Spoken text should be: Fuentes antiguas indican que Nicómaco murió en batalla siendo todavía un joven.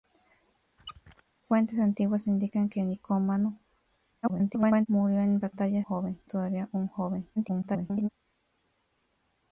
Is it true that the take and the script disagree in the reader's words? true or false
true